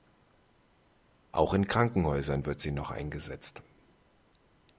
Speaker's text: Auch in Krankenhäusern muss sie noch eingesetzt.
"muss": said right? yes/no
no